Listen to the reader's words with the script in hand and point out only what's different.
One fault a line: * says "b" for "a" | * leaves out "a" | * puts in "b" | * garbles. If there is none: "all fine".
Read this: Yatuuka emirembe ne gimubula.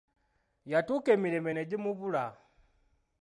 all fine